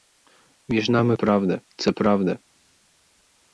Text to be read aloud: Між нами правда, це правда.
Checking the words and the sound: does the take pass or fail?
pass